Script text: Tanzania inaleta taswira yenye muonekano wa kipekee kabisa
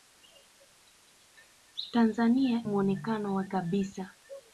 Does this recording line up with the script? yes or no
no